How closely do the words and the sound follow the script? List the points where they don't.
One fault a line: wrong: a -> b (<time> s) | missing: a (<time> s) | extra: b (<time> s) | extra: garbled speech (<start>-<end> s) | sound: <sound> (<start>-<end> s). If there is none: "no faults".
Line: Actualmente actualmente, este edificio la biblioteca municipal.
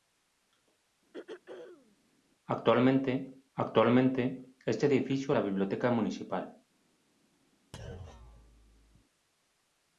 sound: throat clearing (1.1-2.0 s)
sound: thud (7.7-9.0 s)